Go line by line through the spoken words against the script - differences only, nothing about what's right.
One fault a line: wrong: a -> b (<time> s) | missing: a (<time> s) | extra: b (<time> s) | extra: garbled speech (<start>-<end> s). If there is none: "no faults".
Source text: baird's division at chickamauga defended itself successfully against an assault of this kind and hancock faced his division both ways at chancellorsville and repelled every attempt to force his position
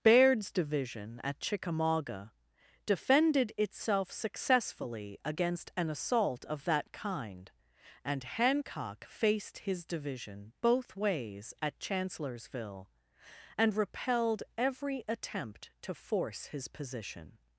wrong: this -> that (6.7 s)